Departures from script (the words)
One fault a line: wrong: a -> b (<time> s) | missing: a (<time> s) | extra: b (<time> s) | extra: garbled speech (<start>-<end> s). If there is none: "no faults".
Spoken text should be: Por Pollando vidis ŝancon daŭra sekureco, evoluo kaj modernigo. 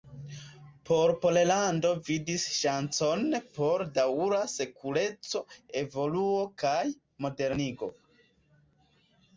extra: por (3.6 s)